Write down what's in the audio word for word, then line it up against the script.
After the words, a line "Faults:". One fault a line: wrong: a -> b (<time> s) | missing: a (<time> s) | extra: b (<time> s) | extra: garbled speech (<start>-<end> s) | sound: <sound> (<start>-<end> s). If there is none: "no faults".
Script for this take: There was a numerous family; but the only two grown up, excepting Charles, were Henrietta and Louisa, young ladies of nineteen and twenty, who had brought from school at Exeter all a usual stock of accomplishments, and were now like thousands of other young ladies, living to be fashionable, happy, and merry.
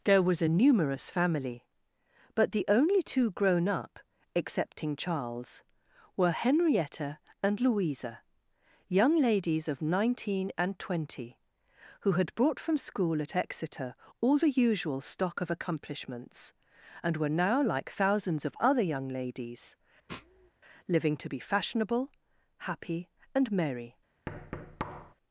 There was a numerous family; but the only two grown up, excepting Charles, were Henrietta and Louisa, young ladies of nineteen and twenty, who had brought from school at Exeter all the usual stock of accomplishments, and were now like thousands of other young ladies, living to be fashionable, happy, and merry.
Faults:
wrong: a -> the (14.4 s)
sound: sniff (20.1-20.5 s)
sound: thud (24.3-25.1 s)